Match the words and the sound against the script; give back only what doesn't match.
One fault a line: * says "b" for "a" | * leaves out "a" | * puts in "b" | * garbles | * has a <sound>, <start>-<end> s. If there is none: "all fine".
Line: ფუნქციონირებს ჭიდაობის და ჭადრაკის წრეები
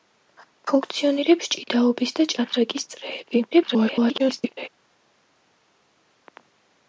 * garbles